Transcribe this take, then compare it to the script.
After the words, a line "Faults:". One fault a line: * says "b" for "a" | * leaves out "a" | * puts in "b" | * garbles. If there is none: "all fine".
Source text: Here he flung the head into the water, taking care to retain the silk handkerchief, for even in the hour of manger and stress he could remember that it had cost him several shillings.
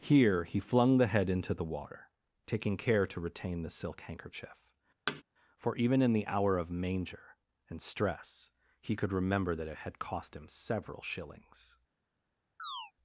Here he flung the head into the water, taking care to retain the silk handkerchief, for even in the hour of manger and stress he could remember that it had cost him several shillings.
Faults:
all fine